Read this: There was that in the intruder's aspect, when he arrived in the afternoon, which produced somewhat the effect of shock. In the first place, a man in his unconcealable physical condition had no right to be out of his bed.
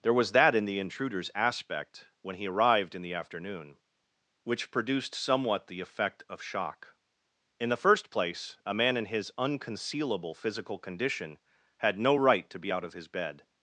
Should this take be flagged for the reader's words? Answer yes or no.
no